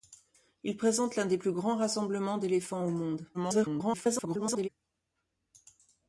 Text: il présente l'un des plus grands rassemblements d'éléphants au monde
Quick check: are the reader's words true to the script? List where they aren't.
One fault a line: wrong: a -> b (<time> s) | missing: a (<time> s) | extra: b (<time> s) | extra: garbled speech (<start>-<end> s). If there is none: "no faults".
extra: garbled speech (3.3-4.7 s)